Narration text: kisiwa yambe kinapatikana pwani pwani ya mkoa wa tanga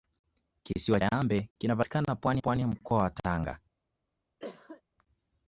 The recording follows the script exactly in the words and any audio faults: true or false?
false